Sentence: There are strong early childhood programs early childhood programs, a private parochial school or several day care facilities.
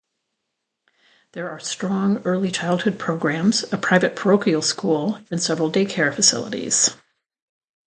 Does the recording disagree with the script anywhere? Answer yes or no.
yes